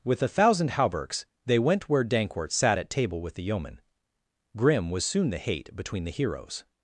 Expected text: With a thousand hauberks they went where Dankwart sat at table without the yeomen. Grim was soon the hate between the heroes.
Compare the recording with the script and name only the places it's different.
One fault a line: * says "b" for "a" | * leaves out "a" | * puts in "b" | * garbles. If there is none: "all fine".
* says "with" for "without"